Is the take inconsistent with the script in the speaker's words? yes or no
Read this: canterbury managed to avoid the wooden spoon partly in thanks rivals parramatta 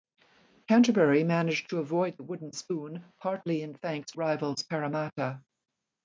no